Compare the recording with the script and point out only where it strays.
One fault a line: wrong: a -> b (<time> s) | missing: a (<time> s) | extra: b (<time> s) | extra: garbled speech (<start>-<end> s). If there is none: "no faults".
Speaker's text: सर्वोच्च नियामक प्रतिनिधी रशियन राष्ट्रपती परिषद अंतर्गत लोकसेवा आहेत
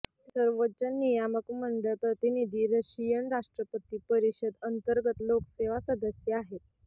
extra: मंडळ (1.6 s)
extra: सदस्य (5.9 s)